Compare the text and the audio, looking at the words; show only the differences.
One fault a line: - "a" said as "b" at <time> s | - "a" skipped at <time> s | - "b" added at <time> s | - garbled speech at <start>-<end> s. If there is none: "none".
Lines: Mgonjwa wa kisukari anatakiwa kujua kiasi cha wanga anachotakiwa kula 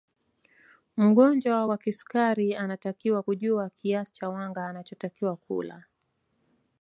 none